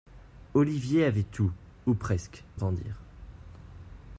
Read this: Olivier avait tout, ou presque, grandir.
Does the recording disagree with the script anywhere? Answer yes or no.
no